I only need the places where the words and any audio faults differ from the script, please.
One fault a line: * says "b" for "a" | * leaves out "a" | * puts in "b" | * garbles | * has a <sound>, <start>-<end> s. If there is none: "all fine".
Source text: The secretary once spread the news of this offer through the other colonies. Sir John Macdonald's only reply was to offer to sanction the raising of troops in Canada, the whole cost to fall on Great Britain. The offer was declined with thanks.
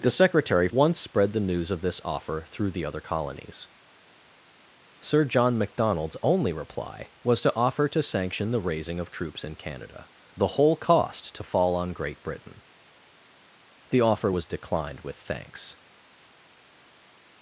all fine